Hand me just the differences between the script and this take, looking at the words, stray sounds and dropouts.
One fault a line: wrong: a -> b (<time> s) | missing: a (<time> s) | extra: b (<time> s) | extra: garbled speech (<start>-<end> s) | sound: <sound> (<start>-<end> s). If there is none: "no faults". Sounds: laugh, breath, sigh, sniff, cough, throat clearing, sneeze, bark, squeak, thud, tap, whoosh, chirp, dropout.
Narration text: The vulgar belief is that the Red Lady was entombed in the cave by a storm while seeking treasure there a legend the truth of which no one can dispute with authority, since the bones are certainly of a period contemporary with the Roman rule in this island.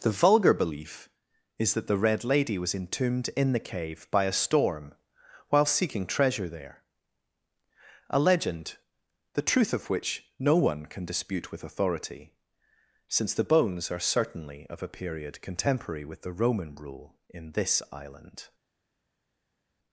no faults